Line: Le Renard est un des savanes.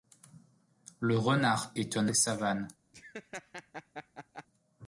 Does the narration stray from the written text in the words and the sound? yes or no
yes